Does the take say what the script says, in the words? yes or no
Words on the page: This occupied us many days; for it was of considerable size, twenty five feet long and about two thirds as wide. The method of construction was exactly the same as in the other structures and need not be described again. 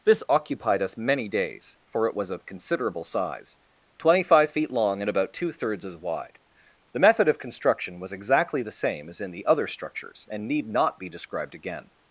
yes